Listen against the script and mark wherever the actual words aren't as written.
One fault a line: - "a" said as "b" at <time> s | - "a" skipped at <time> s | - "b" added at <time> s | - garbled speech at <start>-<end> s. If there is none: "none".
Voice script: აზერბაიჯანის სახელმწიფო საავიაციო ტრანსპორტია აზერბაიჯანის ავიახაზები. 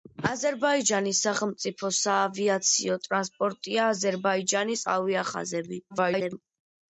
- garbled speech at 5.9-6.4 s